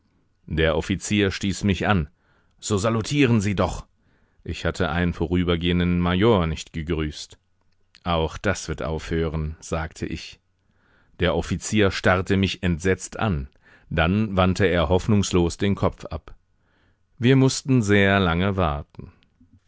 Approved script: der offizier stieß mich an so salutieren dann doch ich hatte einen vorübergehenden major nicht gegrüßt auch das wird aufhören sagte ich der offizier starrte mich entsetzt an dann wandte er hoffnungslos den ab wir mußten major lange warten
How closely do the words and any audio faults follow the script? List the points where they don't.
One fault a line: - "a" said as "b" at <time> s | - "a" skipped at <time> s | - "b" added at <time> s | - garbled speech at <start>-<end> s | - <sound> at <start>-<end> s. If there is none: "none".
- "dann" said as "sie" at 3.4 s
- "kopf" added at 15.8 s
- "major" said as "sehr" at 17.8 s